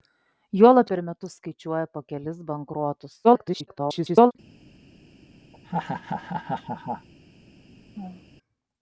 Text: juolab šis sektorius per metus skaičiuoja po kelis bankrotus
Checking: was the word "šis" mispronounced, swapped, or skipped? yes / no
yes